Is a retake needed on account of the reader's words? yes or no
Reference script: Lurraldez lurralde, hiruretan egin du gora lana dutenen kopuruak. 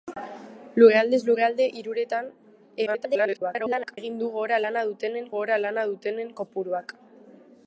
yes